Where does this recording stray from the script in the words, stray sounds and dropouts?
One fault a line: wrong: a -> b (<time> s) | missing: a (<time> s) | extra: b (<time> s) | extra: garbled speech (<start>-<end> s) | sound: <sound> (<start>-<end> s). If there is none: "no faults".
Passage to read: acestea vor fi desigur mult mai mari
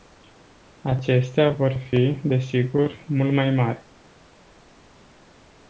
no faults